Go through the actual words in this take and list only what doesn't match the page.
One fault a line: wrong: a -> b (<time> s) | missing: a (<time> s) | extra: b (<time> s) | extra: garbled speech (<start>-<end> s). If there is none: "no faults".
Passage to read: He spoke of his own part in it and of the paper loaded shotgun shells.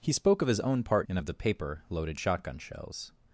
missing: in it (1.1 s)